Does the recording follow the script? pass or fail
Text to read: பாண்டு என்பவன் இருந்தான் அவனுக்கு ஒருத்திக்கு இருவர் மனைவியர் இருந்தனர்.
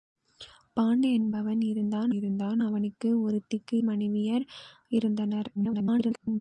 fail